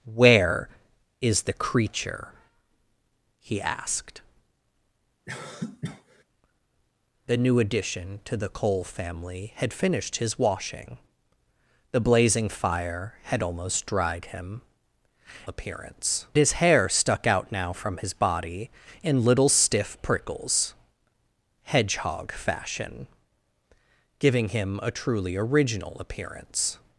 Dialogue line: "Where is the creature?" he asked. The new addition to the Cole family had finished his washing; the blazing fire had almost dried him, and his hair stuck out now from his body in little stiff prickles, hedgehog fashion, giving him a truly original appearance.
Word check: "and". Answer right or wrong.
wrong